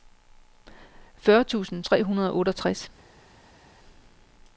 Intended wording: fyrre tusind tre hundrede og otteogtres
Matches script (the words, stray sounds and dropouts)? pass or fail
pass